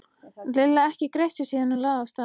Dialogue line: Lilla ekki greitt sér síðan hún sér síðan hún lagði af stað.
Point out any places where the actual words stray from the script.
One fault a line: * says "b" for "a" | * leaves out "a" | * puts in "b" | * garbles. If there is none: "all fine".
* leaves out "sér síðan hún"